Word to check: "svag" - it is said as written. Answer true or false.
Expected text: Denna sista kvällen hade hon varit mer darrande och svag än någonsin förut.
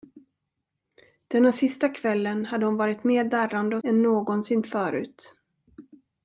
false